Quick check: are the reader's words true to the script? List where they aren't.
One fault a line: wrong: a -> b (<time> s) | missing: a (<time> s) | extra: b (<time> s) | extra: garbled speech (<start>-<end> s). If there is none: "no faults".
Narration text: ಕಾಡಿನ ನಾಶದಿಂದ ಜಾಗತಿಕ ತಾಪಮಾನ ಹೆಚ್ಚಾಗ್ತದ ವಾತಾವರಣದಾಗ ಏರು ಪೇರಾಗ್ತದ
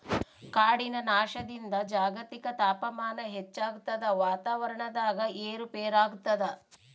no faults